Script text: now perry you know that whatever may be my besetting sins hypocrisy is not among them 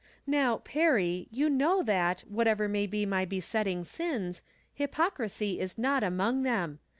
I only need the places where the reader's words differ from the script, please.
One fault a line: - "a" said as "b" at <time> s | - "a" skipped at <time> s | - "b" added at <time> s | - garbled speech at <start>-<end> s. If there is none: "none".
none